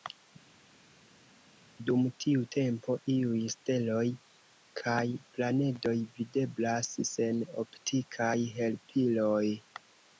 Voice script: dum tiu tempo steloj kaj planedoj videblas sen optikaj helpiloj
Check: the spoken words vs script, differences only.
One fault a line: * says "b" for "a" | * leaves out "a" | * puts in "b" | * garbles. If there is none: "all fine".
* puts in "iuj"